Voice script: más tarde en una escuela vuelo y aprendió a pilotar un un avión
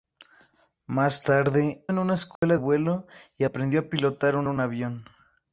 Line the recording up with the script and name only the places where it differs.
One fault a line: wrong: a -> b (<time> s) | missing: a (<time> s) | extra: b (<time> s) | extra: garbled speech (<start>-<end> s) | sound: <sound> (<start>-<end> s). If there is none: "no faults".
sound: dropout (2.4-2.4 s)